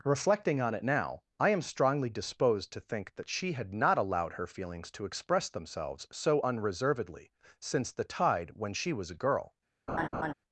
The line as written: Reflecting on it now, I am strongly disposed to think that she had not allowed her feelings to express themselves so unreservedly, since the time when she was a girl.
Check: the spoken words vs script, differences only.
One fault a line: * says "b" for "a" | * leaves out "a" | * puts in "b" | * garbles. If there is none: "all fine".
* says "tide" for "time"